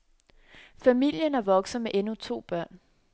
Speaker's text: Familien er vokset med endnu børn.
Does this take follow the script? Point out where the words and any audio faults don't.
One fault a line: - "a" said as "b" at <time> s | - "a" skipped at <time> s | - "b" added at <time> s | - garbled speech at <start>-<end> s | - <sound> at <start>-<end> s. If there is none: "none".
- "to" added at 2.1 s